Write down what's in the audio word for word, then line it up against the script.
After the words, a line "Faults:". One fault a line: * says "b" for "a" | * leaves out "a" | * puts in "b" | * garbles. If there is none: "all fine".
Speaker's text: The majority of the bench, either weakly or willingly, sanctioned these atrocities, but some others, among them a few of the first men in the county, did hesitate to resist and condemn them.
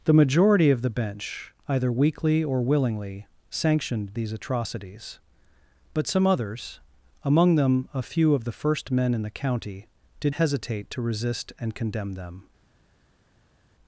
The majority of the bench, either weakly or willingly, sanctioned these atrocities, but some others, among them a few of the first men in the county, did hesitate to resist and condemn them.
Faults:
all fine